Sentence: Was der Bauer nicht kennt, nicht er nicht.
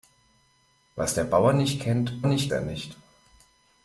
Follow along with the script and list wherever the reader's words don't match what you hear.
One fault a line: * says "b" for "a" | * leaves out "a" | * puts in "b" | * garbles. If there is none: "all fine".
all fine